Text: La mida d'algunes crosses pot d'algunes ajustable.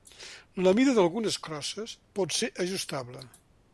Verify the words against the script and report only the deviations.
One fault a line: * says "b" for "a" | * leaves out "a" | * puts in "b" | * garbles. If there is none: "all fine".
* says "ser" for "d'algunes"